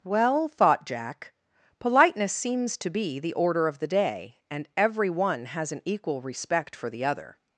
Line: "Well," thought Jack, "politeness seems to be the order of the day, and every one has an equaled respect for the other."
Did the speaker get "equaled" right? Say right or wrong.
wrong